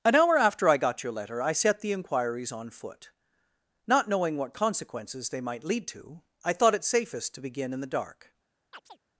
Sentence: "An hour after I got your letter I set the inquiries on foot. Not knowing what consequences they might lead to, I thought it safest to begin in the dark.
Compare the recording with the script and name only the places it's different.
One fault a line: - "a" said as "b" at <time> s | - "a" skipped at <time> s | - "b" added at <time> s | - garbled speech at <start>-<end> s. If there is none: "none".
none